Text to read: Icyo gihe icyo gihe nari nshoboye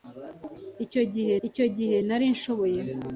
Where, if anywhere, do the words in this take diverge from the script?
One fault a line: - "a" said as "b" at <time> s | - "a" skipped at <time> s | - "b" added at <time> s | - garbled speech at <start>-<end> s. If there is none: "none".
none